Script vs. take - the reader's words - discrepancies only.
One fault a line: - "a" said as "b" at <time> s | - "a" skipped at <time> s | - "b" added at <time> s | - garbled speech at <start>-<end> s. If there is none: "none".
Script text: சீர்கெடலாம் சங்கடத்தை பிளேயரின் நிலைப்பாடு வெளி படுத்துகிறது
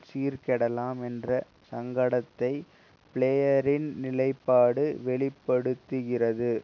- "என்ற" added at 1.0 s